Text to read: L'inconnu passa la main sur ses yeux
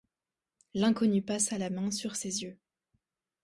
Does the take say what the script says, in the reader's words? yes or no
yes